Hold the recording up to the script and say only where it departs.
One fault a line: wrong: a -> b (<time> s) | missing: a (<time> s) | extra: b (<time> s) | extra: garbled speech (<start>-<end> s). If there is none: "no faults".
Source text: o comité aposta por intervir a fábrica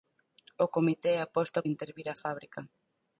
missing: por (1.6 s)